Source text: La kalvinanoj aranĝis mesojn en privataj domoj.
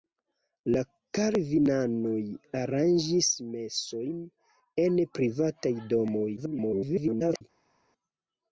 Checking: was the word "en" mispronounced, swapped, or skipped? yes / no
no